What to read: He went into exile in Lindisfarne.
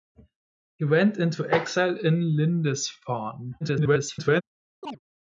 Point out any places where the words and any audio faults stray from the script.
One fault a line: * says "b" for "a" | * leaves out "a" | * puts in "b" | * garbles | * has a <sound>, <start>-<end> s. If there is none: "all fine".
* garbles
* has a chirp, 4.8-5.0 s